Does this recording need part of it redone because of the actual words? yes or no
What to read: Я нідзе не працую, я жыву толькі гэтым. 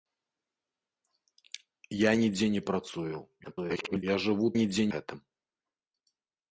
yes